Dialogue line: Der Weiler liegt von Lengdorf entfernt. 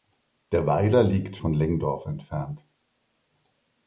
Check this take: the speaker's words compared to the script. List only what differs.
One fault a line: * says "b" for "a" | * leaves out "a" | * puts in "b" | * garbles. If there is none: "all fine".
all fine